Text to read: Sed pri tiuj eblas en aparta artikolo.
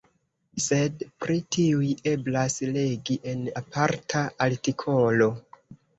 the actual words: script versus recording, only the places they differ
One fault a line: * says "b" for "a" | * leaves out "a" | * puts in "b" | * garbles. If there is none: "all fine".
* puts in "legi"